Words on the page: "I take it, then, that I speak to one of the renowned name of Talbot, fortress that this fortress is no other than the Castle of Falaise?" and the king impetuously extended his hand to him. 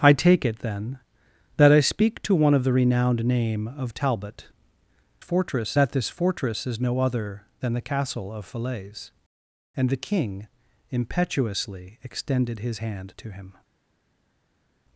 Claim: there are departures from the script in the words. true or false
false